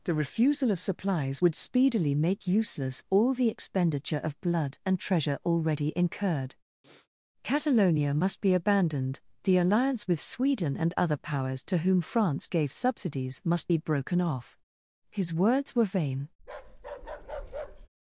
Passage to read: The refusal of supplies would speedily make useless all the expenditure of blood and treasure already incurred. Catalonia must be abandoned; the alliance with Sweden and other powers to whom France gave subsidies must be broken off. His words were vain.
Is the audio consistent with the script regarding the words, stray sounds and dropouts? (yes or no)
no